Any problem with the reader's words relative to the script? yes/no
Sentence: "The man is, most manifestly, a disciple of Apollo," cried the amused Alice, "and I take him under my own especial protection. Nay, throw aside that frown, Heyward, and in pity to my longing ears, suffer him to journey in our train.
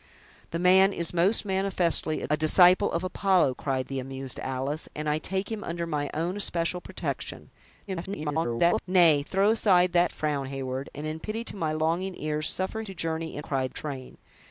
yes